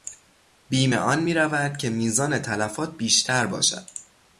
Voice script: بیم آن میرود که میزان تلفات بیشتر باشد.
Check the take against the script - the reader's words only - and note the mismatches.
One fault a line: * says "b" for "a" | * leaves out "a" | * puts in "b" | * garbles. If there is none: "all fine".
all fine